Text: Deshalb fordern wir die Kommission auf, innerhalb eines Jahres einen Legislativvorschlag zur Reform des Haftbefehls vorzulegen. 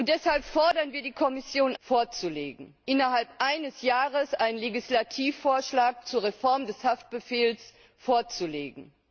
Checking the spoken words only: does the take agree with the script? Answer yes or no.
no